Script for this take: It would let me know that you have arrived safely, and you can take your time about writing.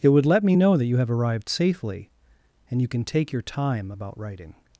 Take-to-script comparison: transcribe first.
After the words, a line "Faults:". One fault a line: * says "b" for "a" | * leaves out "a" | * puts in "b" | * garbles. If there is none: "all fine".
It would let me know that you have arrived safely, and you can take your time about writing.
Faults:
all fine